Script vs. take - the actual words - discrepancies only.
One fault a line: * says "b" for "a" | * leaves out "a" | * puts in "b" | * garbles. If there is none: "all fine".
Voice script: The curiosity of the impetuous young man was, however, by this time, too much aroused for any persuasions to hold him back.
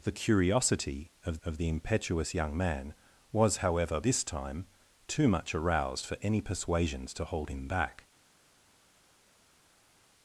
* puts in "of"
* leaves out "by"